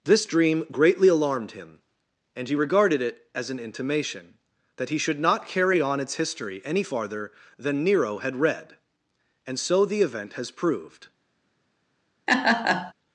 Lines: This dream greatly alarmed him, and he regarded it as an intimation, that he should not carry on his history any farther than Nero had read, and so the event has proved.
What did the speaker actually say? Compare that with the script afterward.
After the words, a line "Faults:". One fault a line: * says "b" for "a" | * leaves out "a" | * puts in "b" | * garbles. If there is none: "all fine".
This dream greatly alarmed him, and he regarded it as an intimation, that he should not carry on its history any farther than Nero had read, and so the event has proved.
Faults:
* says "its" for "his"